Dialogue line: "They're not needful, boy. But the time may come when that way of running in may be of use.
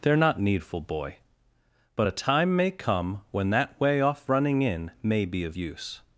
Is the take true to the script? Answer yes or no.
no